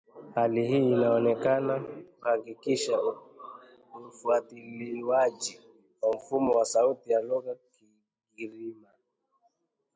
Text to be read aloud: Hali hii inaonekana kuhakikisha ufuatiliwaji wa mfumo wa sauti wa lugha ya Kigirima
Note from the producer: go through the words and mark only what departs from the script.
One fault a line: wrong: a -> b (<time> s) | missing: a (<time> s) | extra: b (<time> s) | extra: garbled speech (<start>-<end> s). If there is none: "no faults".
no faults